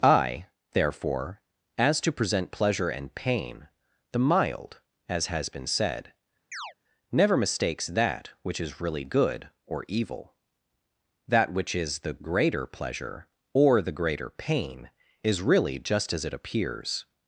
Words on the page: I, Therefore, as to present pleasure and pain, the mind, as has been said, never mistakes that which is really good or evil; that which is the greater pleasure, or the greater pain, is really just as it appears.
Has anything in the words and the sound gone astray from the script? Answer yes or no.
yes